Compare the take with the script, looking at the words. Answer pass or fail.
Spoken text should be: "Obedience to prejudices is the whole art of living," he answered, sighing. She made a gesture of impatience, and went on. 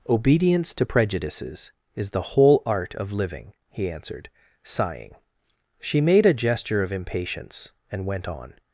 pass